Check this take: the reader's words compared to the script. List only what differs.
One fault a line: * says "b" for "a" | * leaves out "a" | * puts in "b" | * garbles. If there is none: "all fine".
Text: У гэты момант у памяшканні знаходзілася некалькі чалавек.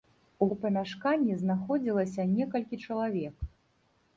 * leaves out "гэты момант"